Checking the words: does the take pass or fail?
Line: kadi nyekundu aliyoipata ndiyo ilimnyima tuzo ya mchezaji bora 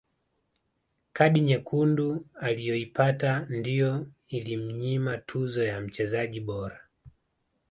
pass